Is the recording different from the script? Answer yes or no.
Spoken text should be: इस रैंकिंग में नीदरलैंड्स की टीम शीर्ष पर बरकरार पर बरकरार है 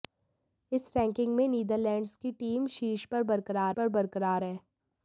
no